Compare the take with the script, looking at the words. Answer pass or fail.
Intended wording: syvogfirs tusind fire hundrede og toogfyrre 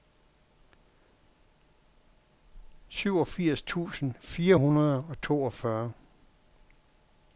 pass